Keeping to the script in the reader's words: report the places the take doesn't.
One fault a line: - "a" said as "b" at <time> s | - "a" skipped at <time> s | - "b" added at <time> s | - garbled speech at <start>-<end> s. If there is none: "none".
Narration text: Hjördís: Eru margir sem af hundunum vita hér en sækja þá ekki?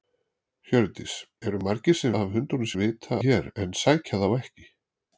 none